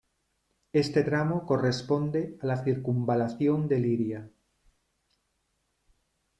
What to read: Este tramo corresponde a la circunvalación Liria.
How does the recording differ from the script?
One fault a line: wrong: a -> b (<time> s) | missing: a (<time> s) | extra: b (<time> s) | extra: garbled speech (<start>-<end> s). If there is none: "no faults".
extra: de (3.7 s)